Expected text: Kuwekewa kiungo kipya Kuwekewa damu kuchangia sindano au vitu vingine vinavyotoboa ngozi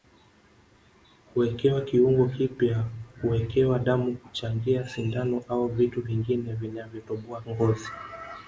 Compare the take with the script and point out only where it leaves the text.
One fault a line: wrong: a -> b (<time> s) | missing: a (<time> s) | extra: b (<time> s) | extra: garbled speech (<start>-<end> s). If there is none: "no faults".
no faults